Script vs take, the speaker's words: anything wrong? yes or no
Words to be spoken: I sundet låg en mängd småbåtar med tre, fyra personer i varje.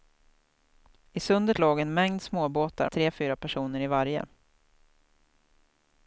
yes